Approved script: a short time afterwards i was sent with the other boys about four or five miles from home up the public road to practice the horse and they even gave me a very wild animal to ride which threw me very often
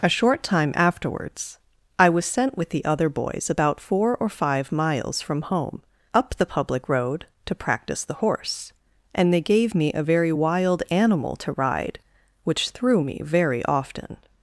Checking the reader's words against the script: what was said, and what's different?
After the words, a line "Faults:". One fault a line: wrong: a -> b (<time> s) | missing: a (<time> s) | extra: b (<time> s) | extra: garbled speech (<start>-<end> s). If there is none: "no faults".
a short time afterwards i was sent with the other boys about four or five miles from home up the public road to practice the horse and they gave me a very wild animal to ride which threw me very often
Faults:
missing: even (9.4 s)